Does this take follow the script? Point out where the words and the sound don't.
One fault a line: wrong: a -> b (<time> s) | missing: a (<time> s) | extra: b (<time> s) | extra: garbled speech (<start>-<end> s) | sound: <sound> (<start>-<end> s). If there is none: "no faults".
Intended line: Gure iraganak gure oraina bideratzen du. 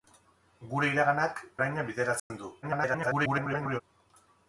missing: gure (1.4 s)
sound: dropout (2.2-2.3 s)
extra: garbled speech (2.6-3.8 s)